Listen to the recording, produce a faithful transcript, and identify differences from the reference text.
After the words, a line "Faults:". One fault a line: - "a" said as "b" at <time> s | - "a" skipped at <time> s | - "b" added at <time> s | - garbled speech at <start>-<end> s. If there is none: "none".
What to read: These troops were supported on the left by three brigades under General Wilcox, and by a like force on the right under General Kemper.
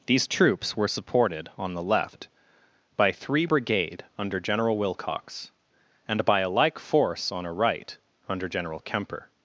These troops were supported on the left by three brigade under General Wilcox, and by a like force on a right under General Kemper.
Faults:
- "brigades" said as "brigade" at 3.4 s
- "the" said as "a" at 7.5 s